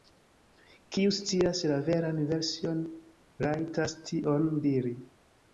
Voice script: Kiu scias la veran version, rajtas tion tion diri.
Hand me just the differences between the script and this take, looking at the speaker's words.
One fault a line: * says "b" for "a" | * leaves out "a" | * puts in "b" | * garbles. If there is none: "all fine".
* leaves out "tion"